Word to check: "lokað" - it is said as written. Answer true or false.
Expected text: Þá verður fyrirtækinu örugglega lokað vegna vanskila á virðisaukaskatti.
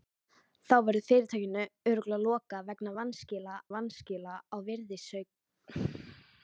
true